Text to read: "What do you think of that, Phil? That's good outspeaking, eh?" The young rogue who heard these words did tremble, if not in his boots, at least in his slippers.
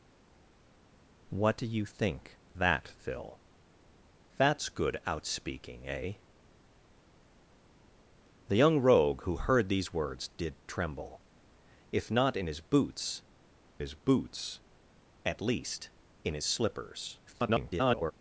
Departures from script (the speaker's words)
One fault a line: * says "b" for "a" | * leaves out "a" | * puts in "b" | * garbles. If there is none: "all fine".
* leaves out "of"
* puts in "his boots"
* garbles